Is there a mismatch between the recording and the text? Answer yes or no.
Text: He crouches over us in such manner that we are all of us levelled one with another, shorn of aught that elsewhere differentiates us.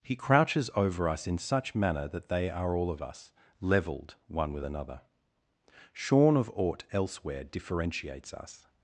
yes